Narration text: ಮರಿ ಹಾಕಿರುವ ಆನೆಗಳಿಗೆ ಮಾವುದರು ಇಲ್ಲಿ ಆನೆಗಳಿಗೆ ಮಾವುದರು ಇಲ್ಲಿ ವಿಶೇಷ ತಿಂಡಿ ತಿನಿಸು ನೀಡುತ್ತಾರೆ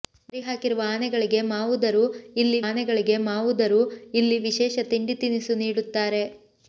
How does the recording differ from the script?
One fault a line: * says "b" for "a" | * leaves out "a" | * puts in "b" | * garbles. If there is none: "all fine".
all fine